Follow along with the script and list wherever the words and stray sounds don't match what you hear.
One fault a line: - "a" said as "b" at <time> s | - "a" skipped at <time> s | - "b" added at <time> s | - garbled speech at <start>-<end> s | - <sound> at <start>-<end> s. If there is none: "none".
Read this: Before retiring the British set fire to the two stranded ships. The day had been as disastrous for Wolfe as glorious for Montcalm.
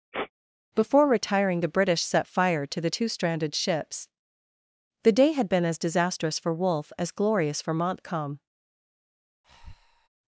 - sniff at 0.1-0.3 s
- breath at 9.4-10.1 s